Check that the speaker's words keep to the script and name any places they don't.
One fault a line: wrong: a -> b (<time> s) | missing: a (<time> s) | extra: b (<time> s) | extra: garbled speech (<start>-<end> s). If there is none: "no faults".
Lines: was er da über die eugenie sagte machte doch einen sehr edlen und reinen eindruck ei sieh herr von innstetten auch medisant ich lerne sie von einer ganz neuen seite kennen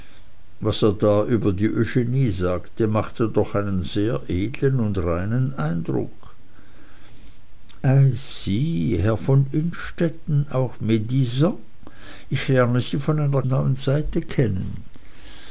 missing: ganz (13.4 s)